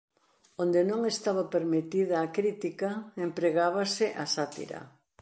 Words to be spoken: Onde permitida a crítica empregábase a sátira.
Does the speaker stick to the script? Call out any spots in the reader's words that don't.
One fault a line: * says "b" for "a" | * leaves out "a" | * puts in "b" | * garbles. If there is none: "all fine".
* puts in "non estaba"